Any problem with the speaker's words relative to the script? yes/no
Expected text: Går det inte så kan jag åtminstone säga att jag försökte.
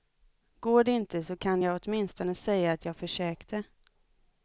no